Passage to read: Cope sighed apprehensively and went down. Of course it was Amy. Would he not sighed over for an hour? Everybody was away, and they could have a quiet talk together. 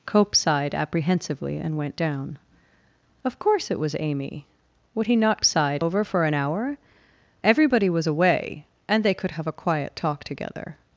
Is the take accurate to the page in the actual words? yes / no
yes